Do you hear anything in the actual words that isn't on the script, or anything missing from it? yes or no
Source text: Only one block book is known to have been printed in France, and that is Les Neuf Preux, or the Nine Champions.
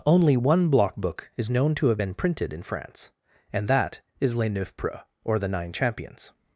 no